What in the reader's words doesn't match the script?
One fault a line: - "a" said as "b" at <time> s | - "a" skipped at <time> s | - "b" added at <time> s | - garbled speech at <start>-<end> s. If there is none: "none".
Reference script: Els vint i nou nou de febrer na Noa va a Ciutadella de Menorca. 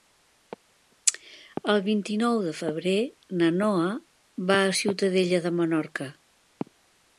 - "Els" said as "El" at 1.7 s
- "nou" skipped at 2.4 s